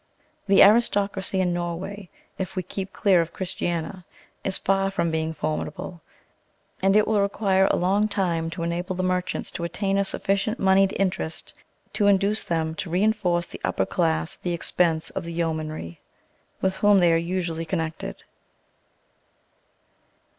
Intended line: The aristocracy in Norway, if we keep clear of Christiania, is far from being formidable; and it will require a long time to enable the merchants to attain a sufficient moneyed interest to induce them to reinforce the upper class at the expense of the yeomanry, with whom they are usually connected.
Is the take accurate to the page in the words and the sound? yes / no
yes